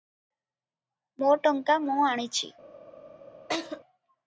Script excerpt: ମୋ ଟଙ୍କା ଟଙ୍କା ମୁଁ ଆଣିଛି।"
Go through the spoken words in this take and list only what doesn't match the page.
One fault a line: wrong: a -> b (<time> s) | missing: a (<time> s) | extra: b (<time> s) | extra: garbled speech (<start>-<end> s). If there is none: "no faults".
missing: ଟଙ୍କା (1.8 s)